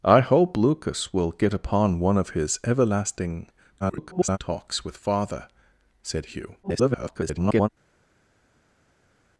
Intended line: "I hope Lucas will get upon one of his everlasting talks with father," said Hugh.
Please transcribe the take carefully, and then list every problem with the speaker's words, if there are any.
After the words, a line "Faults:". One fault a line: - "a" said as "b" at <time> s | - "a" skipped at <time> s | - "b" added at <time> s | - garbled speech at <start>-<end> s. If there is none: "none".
"I hope Lucas will get upon one of his everlasting [garbled] talks with father," said Hugh. [garbled]
Faults:
- garbled speech at 3.8-4.4 s
- garbled speech at 6.6-7.7 s